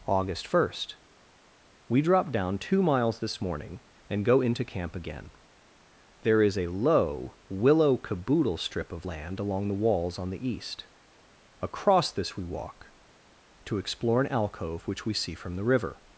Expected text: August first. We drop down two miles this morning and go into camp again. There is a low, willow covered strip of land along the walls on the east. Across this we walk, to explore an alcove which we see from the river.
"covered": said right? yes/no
no